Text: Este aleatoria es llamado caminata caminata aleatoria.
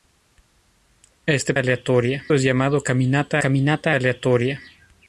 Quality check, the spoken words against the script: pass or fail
pass